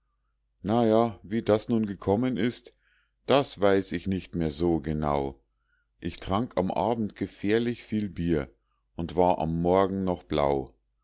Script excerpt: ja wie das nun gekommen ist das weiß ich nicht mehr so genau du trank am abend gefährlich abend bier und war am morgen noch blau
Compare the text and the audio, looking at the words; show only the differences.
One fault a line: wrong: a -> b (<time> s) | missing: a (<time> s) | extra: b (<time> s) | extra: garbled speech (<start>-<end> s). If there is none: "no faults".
wrong: du -> ich (6.0 s)
wrong: abend -> viel (7.8 s)